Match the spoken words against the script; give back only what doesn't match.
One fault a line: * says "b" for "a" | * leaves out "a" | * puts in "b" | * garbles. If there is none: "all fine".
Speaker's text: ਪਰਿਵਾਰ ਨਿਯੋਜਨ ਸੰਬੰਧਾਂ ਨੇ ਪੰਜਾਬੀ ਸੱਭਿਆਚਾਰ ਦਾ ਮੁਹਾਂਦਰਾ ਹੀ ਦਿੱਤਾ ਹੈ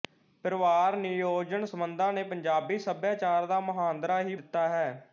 all fine